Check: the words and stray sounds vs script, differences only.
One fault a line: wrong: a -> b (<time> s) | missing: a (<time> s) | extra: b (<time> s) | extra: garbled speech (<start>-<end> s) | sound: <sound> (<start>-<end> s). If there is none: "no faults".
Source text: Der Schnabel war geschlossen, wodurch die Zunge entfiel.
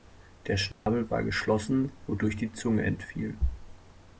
sound: dropout (0.7-0.9 s)